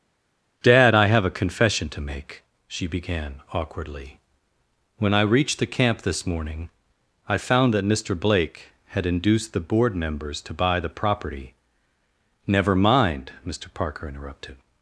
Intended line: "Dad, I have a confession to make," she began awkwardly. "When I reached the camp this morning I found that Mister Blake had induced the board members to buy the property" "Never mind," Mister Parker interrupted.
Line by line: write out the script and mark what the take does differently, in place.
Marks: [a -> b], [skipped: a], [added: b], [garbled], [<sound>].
"Dad, I have a confession to make," she began awkwardly. "When I reached the camp this morning I found that Mister Blake had induced the board members to buy the property" "Never mind," Mister Parker interrupted.